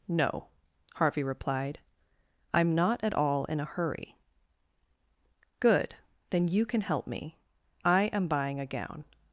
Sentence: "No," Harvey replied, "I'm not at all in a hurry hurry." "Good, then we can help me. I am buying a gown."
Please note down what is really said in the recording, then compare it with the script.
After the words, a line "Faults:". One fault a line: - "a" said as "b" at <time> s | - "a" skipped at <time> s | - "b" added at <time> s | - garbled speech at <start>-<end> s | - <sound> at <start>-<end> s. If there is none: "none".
"No," Harvey replied, "I'm not at all in a hurry." "Good, then you can help me. I am buying a gown."
Faults:
- "hurry" skipped at 4.2 s
- "we" said as "you" at 6.5 s